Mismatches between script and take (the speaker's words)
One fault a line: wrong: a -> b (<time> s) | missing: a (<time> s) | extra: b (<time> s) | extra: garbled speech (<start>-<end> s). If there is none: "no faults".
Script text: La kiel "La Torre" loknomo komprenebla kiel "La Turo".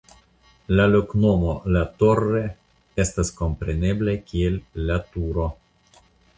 wrong: kiel -> loknomo (0.9 s)
wrong: loknomo -> estas (3.1 s)